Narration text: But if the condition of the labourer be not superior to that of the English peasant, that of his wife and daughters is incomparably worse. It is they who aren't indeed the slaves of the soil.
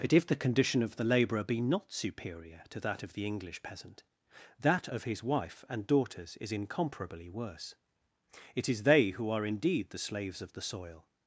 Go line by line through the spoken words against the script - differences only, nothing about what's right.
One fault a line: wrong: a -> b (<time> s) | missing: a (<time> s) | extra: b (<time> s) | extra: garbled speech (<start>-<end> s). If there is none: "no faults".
wrong: aren't -> are (9.3 s)